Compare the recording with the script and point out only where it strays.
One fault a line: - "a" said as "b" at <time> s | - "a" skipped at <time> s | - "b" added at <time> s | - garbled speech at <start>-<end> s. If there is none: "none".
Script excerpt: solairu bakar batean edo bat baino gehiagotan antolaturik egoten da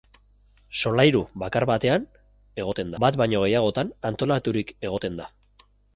- "edo" said as "egoten" at 2.6 s